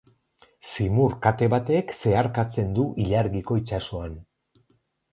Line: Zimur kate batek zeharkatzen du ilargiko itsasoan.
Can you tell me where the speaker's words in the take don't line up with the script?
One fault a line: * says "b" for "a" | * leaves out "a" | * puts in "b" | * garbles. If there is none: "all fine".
all fine